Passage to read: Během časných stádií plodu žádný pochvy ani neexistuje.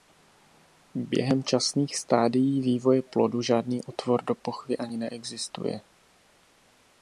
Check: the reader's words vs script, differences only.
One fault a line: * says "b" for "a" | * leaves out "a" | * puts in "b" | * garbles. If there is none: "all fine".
* puts in "vývoje"
* puts in "otvor do"